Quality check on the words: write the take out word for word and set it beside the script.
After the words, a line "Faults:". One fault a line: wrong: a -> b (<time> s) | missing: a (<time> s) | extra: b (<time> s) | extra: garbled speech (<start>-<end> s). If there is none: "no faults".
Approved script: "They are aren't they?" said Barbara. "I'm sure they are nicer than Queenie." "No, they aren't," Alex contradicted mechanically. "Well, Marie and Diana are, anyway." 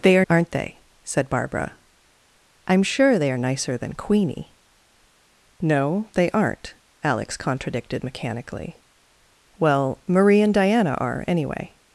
"They are aren't they?" said Barbara. "I'm sure they are nicer than Queenie." "No, they aren't," Alex contradicted mechanically. "Well, Marie and Diana are, anyway."
Faults:
no faults